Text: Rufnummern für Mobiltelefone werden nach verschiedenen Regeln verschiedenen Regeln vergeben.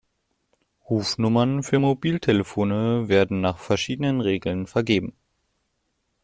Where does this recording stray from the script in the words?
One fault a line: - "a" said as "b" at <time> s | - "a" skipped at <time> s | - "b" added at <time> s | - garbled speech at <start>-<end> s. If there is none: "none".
- "verschiedenen Regeln" skipped at 4.7 s